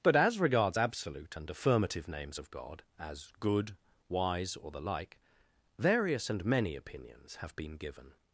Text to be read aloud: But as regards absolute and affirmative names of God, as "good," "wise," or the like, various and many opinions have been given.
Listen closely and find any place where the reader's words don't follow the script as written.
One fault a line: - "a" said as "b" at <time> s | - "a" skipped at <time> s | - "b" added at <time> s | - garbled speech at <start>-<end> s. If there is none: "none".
none